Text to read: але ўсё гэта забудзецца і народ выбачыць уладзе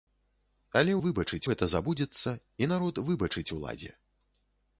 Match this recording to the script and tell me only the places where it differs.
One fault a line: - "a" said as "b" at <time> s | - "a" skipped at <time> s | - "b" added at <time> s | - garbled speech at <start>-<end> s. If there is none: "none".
- "ўсё" said as "выбачыць" at 1.0 s